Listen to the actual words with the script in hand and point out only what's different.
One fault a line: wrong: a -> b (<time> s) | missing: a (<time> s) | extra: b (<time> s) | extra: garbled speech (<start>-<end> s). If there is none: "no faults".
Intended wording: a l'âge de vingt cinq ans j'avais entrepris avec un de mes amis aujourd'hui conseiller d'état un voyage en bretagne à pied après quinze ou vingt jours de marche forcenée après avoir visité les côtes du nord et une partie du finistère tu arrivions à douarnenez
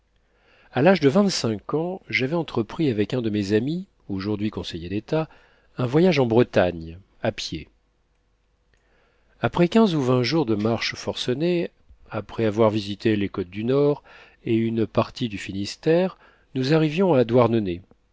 wrong: tu -> nous (16.6 s)